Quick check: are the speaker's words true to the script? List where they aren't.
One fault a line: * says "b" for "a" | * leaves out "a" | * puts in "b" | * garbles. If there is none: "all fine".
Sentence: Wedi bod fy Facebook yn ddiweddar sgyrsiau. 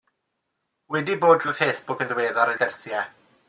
all fine